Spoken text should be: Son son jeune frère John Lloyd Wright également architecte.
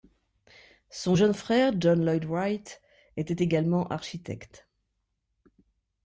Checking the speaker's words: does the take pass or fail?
fail